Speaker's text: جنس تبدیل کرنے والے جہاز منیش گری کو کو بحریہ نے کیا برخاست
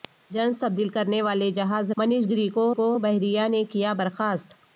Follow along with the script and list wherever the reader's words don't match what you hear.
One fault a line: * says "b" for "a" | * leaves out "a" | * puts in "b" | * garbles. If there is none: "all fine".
all fine